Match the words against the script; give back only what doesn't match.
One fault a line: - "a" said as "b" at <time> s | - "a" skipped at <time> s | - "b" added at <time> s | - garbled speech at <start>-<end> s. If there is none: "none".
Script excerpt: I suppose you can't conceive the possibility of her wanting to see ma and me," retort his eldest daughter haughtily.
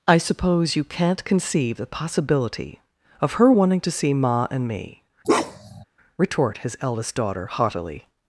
none